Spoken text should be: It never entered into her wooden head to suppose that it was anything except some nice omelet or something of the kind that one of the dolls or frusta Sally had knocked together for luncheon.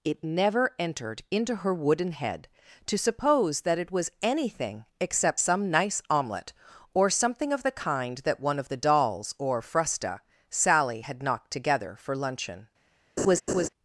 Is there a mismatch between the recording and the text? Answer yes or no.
no